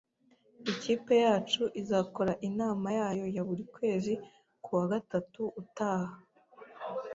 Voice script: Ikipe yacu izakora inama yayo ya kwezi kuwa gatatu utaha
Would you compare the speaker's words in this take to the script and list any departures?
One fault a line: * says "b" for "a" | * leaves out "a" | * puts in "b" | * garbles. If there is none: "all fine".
* puts in "buri"